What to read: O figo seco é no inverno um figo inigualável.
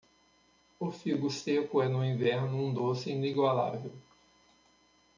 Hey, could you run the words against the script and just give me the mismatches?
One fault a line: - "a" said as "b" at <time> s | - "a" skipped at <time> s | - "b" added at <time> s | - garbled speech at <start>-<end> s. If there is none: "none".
- "figo" said as "doce" at 2.7 s